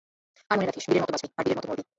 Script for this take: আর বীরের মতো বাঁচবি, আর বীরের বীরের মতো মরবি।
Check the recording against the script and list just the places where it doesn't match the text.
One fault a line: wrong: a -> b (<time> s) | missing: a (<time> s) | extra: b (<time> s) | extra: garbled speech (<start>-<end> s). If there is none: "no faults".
extra: মনে রাখিস (0.6 s)
missing: বীরের (1.6 s)